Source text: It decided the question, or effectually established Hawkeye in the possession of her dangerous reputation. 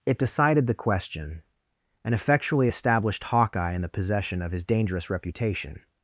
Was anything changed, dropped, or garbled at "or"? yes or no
yes